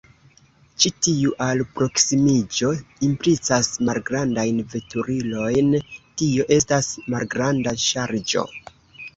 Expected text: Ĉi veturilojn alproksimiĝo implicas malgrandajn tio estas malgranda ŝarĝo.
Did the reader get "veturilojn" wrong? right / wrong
wrong